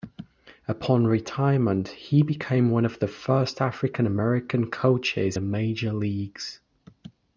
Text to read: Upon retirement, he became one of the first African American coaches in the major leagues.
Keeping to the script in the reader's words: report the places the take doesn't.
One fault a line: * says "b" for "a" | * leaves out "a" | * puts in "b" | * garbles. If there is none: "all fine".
* leaves out "in"